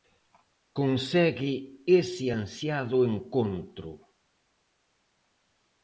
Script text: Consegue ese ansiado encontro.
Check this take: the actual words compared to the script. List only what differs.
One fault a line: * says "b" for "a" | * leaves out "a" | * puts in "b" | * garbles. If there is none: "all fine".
all fine